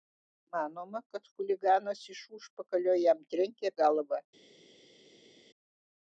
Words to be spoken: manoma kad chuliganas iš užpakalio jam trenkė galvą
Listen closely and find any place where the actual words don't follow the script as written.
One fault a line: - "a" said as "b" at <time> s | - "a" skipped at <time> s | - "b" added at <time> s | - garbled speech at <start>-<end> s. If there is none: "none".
none